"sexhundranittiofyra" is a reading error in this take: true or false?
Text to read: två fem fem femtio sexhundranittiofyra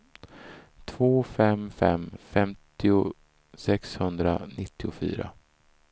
false